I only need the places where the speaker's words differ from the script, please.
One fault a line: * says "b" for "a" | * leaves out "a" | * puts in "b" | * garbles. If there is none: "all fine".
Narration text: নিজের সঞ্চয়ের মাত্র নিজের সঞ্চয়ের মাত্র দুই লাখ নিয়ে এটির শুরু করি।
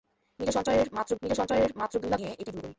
all fine